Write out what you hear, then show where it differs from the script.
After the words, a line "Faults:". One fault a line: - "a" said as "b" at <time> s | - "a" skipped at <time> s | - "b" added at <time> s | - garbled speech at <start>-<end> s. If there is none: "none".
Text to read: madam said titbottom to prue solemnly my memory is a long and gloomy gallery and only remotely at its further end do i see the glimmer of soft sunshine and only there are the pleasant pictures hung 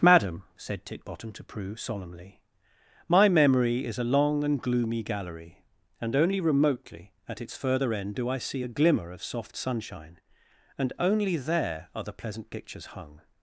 madam said titbottom to prue solemnly my memory is a long and gloomy gallery and only remotely at its further end do i see a glimmer of soft sunshine and only there are the pleasant pictures hung
Faults:
- "the" said as "a" at 8.6 s